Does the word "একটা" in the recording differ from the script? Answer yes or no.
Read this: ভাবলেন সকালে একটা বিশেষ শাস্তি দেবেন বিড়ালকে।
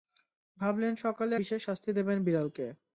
yes